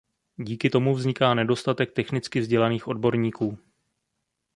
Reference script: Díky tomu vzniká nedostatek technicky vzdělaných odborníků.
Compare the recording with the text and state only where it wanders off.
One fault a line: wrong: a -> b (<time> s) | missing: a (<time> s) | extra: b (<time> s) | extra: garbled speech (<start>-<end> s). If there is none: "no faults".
no faults